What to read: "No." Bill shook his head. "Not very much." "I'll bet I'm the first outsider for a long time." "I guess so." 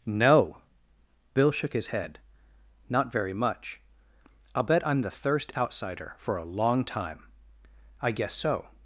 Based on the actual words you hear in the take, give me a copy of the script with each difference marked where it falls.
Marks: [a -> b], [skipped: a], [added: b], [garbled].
"No." Bill shook his head. "Not very much." "I'll bet I'm the [first -> thirst] outsider for a long time." "I guess so."